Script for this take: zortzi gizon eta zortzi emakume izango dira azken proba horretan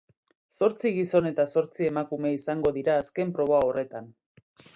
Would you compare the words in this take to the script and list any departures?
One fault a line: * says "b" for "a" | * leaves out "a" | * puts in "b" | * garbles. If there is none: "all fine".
all fine